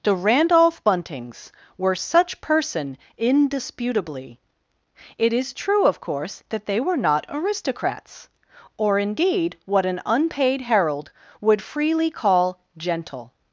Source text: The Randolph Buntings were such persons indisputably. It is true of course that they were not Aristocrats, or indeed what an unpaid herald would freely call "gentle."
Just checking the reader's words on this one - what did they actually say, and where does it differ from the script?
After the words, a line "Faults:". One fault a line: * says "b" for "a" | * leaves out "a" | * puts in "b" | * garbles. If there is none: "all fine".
The Randolph Buntings were such person indisputably. It is true of course that they were not Aristocrats, or indeed what an unpaid herald would freely call "gentle."
Faults:
* says "person" for "persons"